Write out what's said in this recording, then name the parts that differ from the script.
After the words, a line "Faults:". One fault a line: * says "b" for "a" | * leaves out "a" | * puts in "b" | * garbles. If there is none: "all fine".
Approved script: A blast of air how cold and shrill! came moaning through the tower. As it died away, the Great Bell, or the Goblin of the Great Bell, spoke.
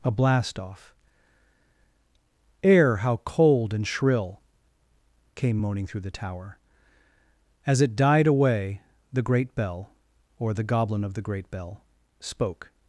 A blast off air how cold and shrill! came moaning through the tower. As it died away, the Great Bell, or the Goblin of the Great Bell, spoke.
Faults:
* says "off" for "of"